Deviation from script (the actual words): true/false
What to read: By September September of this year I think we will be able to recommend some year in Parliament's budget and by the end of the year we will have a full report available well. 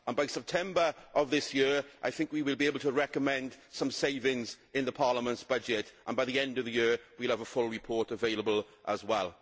true